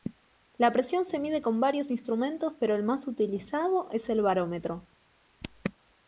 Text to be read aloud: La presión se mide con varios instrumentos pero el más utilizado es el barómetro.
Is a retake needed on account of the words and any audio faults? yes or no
no